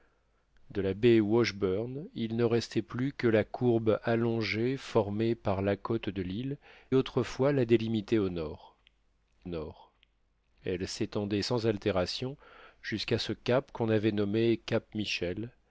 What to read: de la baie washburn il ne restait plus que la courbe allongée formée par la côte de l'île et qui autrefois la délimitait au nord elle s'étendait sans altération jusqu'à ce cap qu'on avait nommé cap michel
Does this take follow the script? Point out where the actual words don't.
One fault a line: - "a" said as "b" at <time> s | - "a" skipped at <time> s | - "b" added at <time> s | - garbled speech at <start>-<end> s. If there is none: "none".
- "et qui" skipped at 6.6 s
- "nord" added at 9.5 s